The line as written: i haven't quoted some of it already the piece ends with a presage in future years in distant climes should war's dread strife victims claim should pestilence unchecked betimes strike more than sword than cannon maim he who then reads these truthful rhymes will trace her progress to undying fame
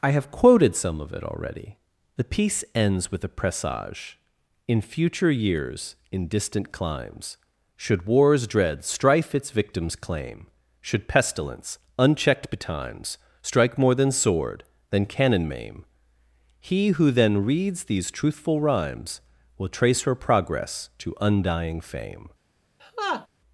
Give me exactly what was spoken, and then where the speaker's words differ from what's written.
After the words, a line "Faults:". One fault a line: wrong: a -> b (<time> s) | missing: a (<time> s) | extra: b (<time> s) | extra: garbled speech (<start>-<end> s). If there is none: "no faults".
i have quoted some of it already the piece ends with a presage in future years in distant climes should war's dread strife its victims claim should pestilence unchecked betimes strike more than sword than cannon maim he who then reads these truthful rhymes will trace her progress to undying fame
Faults:
wrong: haven't -> have (0.1 s)
extra: its (9.3 s)